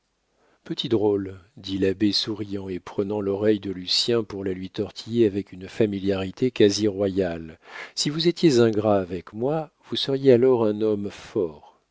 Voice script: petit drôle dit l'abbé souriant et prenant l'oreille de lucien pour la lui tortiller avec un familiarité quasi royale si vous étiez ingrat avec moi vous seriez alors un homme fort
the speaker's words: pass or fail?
fail